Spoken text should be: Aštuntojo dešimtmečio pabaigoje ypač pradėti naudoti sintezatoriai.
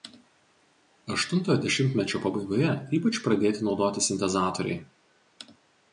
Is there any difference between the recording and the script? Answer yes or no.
no